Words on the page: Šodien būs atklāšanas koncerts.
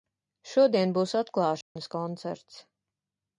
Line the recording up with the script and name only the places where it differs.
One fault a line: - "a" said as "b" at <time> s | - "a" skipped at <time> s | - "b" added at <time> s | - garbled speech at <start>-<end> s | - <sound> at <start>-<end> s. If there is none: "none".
- dropout at 1.6-1.8 s